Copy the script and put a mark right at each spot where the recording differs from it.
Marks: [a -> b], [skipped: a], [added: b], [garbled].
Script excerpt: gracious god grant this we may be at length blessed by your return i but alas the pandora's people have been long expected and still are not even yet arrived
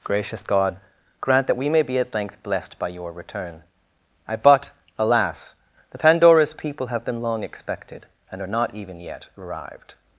gracious god grant [this -> that] we may be at length blessed by your return i but alas the pandora's people have been long expected and [skipped: still] are not even yet arrived